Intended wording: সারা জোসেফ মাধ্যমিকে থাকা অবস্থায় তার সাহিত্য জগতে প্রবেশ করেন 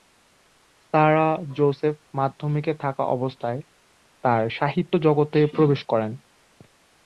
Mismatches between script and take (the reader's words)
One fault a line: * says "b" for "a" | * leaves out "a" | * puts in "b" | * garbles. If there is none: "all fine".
all fine